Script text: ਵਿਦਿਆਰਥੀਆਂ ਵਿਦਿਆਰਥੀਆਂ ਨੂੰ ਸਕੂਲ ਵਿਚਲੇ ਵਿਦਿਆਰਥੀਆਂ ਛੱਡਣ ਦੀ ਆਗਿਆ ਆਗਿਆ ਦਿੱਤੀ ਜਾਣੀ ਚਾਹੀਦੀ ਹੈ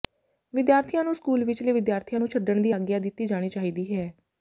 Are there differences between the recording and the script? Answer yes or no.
yes